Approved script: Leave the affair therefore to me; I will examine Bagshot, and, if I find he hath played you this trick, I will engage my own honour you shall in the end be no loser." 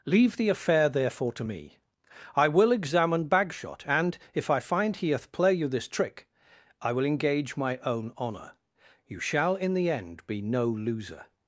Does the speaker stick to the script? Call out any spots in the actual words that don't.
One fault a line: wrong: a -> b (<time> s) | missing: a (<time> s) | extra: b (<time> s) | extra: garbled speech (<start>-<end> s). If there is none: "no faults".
wrong: played -> play (5.3 s)